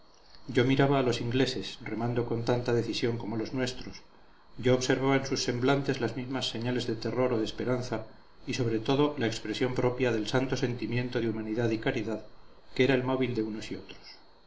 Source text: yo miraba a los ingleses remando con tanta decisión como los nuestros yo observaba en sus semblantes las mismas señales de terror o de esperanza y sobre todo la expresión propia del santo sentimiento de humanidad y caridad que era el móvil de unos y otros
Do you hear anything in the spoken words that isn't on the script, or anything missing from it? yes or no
no